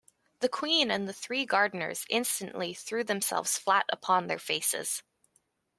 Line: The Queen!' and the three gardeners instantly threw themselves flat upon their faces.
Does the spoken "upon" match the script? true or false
true